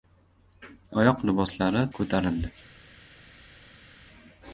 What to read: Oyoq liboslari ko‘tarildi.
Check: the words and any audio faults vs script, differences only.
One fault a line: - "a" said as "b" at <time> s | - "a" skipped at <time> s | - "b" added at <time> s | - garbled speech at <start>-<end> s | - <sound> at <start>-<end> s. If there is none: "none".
none